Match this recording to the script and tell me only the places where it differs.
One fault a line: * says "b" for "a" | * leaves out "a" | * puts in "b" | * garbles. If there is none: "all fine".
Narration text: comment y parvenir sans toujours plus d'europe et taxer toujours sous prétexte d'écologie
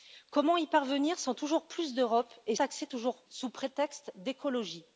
all fine